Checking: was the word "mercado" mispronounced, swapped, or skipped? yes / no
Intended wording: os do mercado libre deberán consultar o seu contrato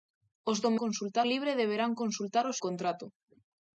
yes